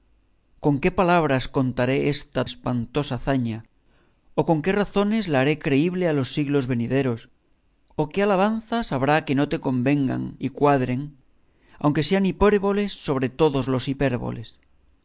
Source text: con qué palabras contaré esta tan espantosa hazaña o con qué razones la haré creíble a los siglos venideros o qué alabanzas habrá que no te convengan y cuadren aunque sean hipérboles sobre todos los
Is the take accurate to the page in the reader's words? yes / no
no